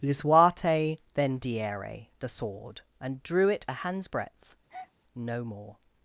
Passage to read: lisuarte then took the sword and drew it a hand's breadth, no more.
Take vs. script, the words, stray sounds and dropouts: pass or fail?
fail